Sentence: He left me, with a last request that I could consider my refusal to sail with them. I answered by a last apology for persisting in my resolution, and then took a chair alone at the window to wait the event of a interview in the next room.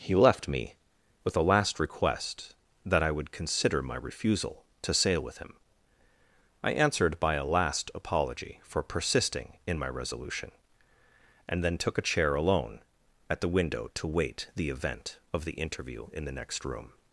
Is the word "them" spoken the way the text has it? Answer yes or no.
no